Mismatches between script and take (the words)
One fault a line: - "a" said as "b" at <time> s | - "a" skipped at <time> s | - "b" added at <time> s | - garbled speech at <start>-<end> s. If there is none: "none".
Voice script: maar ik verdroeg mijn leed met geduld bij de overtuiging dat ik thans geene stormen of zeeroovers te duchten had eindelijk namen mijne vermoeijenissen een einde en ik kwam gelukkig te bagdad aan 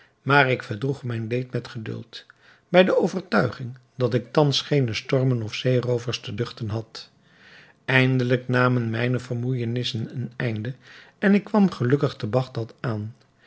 none